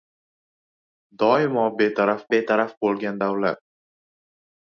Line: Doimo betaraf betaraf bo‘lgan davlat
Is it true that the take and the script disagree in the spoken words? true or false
false